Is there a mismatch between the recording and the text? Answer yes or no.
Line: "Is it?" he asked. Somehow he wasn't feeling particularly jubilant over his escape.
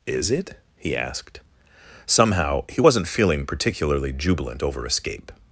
yes